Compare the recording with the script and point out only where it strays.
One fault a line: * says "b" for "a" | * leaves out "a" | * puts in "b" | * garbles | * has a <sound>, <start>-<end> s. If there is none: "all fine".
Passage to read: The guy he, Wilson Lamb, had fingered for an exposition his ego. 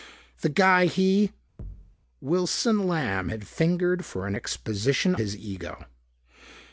* has a thud, 1.6-2.0 s